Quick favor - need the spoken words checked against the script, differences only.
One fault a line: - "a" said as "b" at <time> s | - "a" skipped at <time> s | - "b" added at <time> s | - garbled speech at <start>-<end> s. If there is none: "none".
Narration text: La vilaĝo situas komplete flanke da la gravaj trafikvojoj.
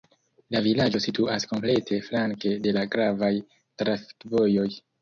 - "da" said as "de" at 2.6 s